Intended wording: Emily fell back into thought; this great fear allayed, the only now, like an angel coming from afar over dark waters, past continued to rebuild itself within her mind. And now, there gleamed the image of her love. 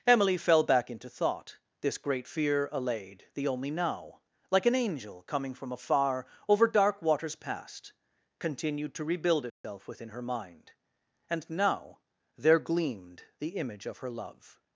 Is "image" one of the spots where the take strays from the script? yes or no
no